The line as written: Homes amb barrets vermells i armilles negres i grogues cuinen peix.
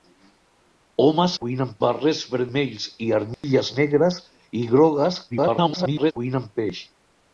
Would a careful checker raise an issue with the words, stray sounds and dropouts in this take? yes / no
yes